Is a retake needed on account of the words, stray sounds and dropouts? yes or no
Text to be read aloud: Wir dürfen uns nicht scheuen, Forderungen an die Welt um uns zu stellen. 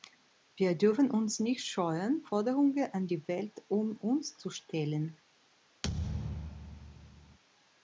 yes